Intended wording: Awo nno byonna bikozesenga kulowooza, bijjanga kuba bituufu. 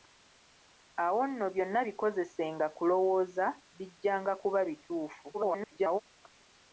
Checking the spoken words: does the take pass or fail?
fail